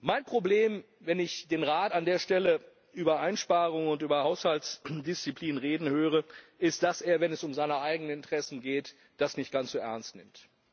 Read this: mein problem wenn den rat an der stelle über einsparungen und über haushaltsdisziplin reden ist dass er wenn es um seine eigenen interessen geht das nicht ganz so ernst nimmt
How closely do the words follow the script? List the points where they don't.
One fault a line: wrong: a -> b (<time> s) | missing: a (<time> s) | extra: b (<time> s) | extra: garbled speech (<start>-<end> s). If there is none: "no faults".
extra: ich (1.2 s)
extra: höre (5.9 s)